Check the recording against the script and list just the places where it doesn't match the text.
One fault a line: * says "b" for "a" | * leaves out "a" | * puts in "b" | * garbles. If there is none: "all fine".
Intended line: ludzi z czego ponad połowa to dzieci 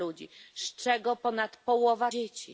* leaves out "to"